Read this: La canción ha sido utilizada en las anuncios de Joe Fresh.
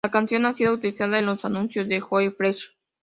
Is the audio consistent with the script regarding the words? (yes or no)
no